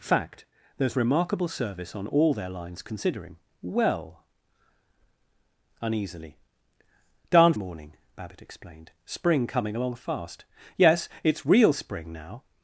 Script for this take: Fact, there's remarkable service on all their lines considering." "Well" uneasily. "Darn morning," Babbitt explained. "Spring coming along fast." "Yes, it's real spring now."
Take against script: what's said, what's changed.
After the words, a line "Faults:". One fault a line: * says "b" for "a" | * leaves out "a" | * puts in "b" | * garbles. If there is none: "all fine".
Fact, there's remarkable service on all their lines considering." "Well" uneasily. "Darn morning," Babbitt explained. "Spring coming along fast." "Yes, it's real spring now."
Faults:
all fine